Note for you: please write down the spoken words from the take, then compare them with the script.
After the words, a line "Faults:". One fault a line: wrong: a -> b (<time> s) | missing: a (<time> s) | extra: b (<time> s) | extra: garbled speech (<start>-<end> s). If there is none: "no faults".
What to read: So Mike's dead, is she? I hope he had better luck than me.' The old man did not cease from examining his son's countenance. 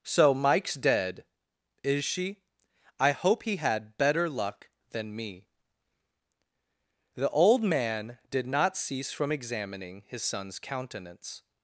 So Mike's dead, is she? I hope he had better luck than me.' The old man did not cease from examining his son's countenance.
Faults:
no faults